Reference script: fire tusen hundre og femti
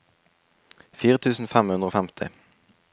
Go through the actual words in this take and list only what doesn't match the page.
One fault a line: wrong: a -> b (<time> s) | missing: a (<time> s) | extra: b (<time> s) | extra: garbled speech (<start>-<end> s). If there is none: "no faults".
extra: fem (1.6 s)